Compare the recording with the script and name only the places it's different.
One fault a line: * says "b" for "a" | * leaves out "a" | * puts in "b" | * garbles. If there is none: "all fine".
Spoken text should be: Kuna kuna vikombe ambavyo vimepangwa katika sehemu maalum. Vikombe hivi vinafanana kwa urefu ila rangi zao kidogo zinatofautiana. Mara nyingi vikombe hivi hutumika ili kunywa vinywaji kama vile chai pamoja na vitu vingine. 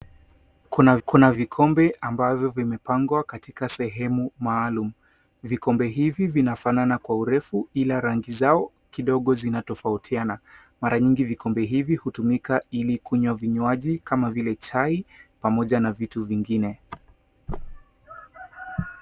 all fine